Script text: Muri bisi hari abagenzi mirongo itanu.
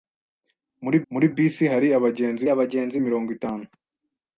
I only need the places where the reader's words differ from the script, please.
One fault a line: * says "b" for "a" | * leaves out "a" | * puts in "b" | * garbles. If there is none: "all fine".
* puts in "muri"
* puts in "abagenzi"